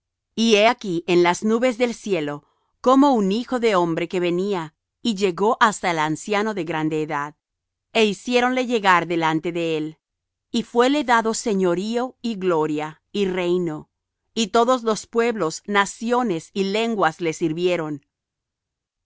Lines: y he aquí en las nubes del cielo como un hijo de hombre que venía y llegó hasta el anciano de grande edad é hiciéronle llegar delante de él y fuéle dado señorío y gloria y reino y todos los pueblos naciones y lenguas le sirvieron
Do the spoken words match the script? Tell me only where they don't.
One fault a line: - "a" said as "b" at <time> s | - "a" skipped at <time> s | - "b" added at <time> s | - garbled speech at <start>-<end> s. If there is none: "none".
none